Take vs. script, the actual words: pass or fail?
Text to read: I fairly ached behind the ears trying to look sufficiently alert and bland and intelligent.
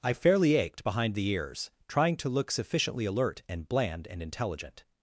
pass